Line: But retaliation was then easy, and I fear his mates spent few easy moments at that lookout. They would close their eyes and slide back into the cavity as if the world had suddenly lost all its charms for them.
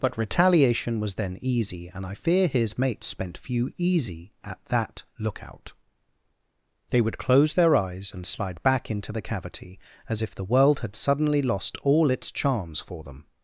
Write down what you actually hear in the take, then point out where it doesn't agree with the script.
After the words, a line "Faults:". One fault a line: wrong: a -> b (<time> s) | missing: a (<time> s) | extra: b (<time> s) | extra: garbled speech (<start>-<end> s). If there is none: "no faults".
But retaliation was then easy, and I fear his mates spent few easy at that lookout. They would close their eyes and slide back into the cavity as if the world had suddenly lost all its charms for them.
Faults:
missing: moments (4.3 s)